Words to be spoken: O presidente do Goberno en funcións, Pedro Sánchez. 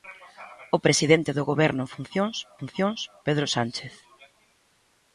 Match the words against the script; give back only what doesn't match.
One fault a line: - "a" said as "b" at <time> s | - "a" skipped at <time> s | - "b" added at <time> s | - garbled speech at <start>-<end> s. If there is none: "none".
- "funcións" added at 2.6 s